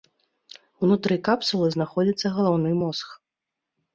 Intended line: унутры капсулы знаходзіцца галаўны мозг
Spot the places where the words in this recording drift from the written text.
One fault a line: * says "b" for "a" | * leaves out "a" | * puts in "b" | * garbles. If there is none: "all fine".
all fine